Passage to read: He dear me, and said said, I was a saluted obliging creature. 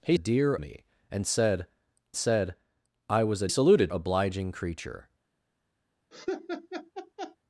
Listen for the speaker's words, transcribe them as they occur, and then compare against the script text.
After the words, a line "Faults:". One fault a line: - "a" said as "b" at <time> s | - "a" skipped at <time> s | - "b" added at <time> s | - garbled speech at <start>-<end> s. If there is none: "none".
He dear me, and said said, I was a saluted obliging creature.
Faults:
none